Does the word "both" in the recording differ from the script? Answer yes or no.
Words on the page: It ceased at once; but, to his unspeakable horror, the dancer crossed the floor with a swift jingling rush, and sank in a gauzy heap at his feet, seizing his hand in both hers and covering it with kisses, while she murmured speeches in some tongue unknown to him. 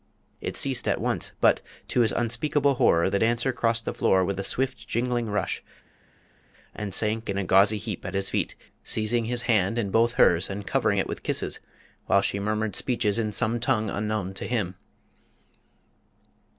no